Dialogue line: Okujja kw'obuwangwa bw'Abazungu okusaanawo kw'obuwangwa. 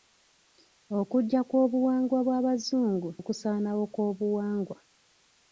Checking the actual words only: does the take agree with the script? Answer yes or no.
yes